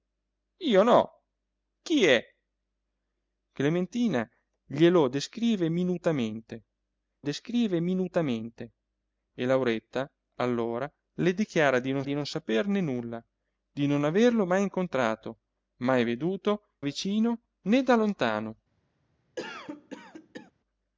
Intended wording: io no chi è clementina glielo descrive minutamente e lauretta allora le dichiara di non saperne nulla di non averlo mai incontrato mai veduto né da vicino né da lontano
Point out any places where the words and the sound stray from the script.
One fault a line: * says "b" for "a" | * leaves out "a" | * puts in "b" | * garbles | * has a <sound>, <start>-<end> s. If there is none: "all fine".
* puts in "descrive minutamente"
* puts in "di non"
* leaves out "né da"
* has a cough, 19.4-20.5 s